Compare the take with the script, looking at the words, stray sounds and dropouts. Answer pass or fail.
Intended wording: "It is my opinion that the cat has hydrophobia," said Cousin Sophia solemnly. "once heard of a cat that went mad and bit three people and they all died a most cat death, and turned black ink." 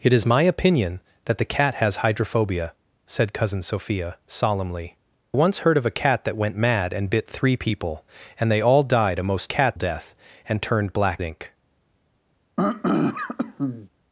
fail